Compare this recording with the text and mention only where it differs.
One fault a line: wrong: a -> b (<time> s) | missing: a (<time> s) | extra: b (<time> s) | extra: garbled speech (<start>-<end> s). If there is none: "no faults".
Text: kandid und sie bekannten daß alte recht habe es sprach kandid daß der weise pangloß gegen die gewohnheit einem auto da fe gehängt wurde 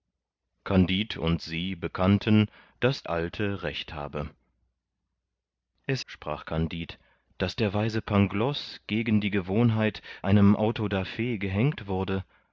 no faults